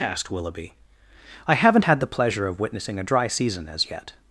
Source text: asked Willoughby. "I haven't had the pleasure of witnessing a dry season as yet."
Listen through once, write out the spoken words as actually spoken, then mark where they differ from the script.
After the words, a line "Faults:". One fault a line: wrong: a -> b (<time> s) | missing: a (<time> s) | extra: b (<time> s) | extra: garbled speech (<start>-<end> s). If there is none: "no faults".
asked Willoughby. "I haven't had the pleasure of witnessing a dry season as yet."
Faults:
no faults